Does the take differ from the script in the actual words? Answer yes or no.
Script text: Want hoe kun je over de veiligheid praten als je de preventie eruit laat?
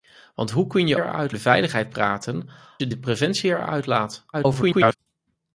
yes